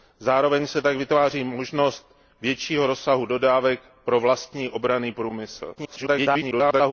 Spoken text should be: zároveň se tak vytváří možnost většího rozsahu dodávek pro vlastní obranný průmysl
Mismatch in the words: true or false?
true